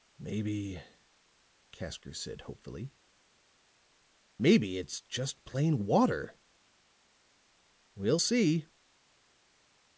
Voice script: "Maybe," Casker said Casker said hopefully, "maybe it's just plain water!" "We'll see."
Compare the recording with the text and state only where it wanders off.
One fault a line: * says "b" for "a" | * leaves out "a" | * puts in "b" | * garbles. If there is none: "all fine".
* leaves out "Casker said"